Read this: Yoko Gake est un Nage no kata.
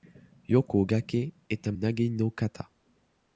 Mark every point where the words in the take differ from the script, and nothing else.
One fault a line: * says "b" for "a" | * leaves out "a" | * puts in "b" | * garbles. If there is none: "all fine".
all fine